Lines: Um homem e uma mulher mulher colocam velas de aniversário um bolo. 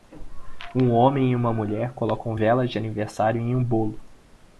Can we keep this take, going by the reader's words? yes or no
no